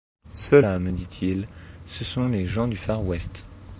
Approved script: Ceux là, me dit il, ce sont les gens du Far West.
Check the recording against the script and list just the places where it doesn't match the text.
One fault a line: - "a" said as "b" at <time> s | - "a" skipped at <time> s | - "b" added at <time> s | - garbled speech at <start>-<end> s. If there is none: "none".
none